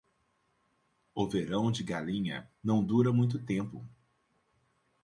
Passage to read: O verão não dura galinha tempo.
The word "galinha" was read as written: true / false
false